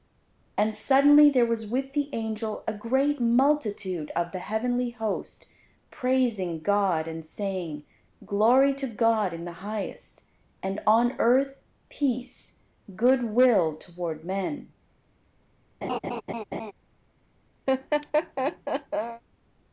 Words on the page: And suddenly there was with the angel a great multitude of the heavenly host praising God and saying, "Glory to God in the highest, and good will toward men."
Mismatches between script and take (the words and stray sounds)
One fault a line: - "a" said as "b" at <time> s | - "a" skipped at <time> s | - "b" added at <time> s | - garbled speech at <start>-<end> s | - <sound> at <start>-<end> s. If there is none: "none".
- "on earth peace" added at 10.9 s
- laugh at 15.8-16.7 s
- laugh at 17.7-19.2 s